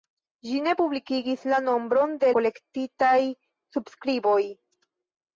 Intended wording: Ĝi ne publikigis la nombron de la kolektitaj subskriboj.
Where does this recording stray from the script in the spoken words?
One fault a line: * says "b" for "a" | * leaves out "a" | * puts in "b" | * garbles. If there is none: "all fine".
* leaves out "la"